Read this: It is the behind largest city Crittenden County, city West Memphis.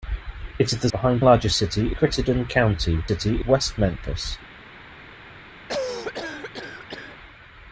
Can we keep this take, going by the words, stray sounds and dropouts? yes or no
no